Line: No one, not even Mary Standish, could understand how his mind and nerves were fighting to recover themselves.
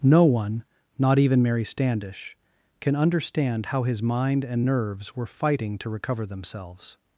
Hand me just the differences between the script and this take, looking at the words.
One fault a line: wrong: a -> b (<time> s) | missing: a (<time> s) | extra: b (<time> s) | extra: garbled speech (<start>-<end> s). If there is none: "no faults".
wrong: could -> can (2.8 s)